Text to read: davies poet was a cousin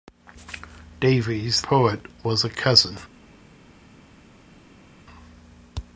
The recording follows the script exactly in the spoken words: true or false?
true